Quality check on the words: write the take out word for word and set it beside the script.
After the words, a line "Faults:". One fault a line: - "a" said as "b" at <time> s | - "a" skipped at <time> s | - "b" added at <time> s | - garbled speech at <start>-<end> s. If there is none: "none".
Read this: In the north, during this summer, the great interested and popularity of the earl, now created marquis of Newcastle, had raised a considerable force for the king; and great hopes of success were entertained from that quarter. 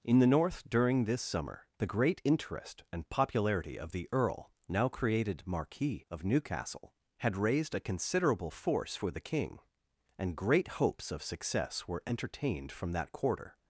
In the north, during this summer, the great interest and popularity of the earl, now created marquis of Newcastle, had raised a considerable force for the king; and great hopes of success were entertained from that quarter.
Faults:
- "interested" said as "interest" at 2.2 s